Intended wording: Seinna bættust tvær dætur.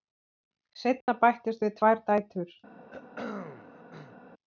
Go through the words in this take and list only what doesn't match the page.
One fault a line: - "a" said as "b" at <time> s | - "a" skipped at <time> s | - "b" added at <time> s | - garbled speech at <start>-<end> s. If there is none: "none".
- "við" added at 1.7 s